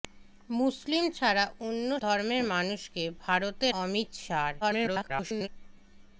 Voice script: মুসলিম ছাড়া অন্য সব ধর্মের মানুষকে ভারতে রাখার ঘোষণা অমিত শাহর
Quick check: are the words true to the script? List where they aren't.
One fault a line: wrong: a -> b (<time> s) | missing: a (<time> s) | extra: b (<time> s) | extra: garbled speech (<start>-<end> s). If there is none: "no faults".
missing: সব (1.9 s)
missing: রাখার ঘোষণা (3.7 s)
extra: garbled speech (4.6-5.5 s)